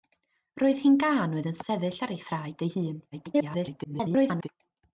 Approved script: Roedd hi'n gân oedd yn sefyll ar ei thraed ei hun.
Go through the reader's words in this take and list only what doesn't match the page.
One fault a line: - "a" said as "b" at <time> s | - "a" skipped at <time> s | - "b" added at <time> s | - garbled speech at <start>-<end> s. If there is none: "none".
- garbled speech at 3.1-4.5 s